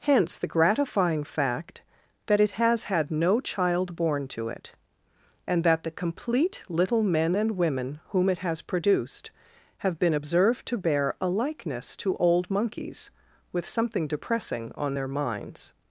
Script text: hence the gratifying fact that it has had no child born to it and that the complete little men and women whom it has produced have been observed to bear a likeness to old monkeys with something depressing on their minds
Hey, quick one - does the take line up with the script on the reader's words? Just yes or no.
yes